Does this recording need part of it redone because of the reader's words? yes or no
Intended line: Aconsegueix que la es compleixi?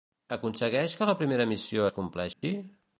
yes